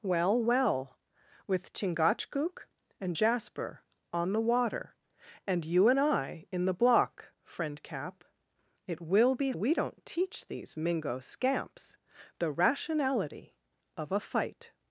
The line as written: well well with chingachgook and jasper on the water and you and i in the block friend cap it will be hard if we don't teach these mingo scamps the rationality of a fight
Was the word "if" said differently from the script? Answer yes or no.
yes